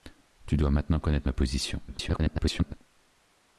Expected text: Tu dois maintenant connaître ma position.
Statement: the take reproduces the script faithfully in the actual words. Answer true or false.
false